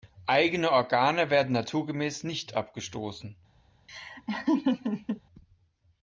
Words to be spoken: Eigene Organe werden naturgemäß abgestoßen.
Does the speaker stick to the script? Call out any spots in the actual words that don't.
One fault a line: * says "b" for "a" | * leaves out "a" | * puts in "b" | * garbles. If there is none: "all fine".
* puts in "nicht"